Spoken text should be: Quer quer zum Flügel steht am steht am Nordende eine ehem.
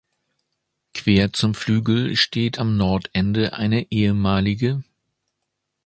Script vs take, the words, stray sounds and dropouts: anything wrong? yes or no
yes